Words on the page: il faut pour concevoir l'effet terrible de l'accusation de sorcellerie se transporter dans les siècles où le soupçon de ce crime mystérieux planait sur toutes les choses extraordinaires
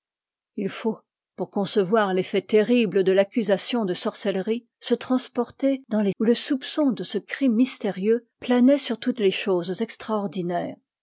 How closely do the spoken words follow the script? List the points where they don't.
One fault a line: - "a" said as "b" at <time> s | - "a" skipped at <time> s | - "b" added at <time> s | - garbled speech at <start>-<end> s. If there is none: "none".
- "siècles" skipped at 6.1 s